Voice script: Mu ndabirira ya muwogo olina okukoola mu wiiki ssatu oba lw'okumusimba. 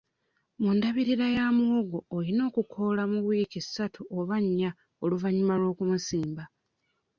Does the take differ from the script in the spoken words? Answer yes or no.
yes